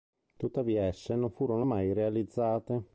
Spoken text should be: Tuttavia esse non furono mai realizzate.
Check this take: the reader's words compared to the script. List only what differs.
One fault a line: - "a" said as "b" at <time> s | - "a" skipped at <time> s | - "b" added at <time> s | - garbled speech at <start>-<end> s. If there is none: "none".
none